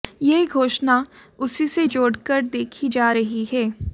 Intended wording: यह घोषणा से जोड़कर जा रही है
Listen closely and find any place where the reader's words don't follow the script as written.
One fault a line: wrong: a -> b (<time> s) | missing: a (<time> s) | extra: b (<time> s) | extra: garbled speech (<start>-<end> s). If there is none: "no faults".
extra: उसी (1.4 s)
extra: देखी (2.4 s)